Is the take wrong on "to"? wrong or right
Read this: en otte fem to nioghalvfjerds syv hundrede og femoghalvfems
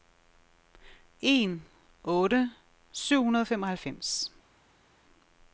wrong